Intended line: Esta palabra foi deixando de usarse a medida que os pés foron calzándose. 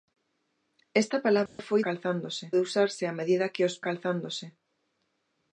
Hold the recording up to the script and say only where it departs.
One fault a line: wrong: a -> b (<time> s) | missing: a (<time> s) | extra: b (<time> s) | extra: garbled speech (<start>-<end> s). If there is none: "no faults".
wrong: deixando -> calzándose (1.9 s)
missing: pés foron (3.7 s)